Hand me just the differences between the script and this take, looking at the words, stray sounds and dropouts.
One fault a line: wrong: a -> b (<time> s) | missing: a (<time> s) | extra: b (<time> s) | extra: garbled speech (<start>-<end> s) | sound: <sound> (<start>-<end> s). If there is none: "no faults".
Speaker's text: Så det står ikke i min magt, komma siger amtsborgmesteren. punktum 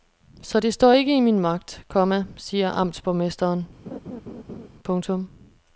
sound: laugh (3.9-4.7 s)